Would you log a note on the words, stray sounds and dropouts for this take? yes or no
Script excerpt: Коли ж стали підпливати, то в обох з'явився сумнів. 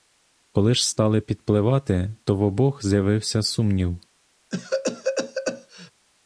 yes